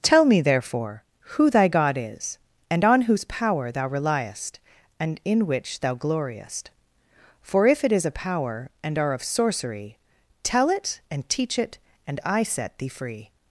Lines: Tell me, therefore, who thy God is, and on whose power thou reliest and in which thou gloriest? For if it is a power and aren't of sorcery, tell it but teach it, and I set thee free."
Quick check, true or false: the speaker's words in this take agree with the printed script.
false